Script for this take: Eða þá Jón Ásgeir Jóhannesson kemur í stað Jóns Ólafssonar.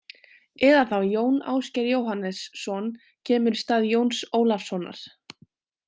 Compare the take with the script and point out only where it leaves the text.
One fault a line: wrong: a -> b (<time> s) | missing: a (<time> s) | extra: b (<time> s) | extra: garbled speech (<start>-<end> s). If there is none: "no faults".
no faults